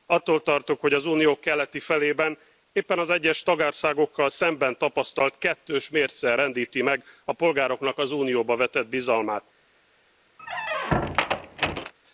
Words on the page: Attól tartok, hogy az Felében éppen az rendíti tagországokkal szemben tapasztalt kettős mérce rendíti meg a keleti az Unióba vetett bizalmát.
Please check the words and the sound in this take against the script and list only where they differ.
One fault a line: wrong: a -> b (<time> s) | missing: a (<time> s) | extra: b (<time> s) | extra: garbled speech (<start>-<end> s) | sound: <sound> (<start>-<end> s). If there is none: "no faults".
extra: Unió keleti (1.1 s)
wrong: rendíti -> egyes (3.1 s)
wrong: keleti -> polgároknak (7.3 s)
sound: squeak (10.4-11.9 s)